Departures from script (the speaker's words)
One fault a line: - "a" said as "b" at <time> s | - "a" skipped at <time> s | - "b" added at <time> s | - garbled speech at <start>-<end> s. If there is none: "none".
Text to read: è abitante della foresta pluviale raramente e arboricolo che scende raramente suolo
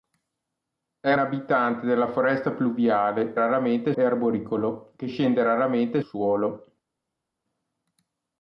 none